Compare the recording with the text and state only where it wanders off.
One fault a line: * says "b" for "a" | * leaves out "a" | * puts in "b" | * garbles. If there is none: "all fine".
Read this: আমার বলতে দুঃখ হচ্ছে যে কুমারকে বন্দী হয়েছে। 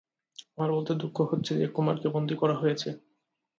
* puts in "করা"